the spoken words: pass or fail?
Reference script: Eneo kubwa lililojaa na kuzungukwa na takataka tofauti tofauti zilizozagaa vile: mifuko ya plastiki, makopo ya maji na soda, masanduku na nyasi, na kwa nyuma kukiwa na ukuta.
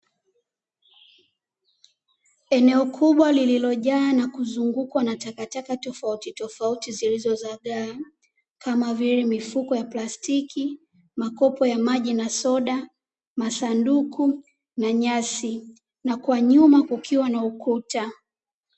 fail